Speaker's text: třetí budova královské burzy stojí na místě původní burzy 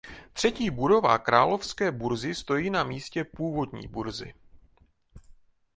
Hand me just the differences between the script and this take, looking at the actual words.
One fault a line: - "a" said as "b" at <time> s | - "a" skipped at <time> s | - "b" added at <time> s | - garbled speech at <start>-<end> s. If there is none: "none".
none